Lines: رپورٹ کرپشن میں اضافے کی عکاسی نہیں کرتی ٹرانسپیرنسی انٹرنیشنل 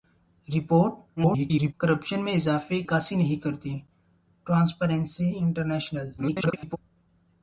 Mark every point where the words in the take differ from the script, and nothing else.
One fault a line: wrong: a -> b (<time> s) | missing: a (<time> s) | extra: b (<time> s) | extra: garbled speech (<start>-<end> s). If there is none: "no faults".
extra: garbled speech (1.2-1.7 s)
missing: کی (2.8 s)
extra: garbled speech (6.2-6.8 s)